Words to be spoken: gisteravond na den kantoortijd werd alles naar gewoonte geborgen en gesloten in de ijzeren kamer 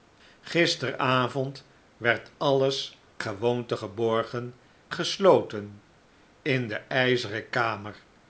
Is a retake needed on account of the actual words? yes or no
yes